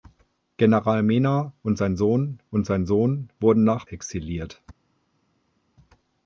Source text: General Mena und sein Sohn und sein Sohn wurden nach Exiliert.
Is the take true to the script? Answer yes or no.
yes